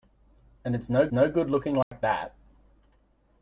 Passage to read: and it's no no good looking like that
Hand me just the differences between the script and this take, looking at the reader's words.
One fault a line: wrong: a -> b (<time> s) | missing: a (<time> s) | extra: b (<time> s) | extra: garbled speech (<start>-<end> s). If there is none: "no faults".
no faults